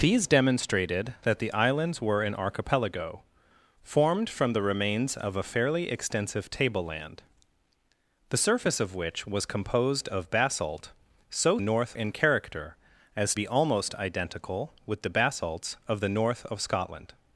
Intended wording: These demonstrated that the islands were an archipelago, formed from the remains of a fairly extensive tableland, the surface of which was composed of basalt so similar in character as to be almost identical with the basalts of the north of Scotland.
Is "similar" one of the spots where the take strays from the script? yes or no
yes